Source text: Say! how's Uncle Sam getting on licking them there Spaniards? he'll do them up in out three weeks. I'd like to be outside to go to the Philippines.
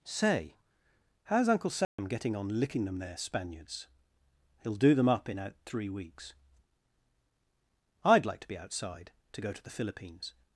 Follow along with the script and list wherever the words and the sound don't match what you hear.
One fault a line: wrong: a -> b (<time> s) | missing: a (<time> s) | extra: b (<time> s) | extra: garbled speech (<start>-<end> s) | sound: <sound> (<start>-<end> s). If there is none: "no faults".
sound: dropout (1.8-2.0 s)